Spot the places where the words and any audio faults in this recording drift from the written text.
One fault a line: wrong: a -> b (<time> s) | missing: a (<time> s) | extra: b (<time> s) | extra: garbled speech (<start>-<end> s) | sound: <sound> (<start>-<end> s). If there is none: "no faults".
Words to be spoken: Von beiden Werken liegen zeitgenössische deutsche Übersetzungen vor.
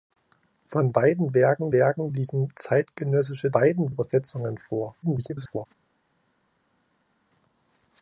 extra: Werken (1.7 s)
wrong: deutsche -> beiden (3.5 s)
extra: garbled speech (5.0-5.7 s)